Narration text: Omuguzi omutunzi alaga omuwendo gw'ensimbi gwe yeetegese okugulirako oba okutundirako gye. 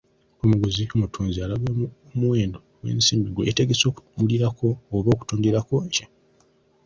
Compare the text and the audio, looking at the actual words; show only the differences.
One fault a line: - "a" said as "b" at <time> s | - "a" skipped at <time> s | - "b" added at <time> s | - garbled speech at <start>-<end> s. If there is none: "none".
none